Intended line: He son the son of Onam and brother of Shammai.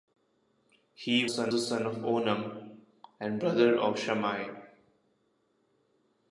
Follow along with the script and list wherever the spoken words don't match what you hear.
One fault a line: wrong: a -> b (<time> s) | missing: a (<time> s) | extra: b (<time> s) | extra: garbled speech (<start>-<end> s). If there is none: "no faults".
no faults